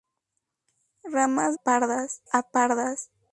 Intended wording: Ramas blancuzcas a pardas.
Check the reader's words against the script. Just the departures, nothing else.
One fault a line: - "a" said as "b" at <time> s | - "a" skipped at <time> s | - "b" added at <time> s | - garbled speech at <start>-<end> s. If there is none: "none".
- "blancuzcas" said as "pardas" at 1.5 s